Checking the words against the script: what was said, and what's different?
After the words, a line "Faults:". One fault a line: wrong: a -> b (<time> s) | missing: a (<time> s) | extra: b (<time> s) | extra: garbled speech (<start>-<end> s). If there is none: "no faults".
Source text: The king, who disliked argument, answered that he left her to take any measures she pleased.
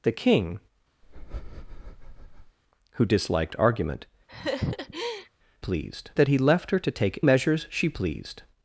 The king, who disliked argument, pleased that he left her to take measures she pleased.
Faults:
wrong: answered -> pleased (5.6 s)
missing: any (7.2 s)